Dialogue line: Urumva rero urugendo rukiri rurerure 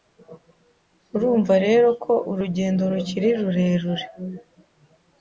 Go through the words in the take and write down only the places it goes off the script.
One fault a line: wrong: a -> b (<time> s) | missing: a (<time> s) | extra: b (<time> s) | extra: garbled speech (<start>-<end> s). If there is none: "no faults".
extra: ko (2.0 s)